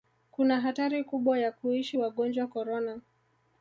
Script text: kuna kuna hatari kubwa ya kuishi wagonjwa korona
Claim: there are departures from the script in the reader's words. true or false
true